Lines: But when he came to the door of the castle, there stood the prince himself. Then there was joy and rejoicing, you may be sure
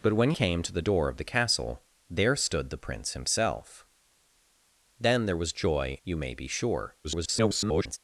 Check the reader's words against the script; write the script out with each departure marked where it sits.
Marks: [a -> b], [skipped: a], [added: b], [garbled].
But when [skipped: he] came to the door of the castle, there stood the prince himself. Then there was joy [skipped: and rejoicing,] you may be sure [garbled]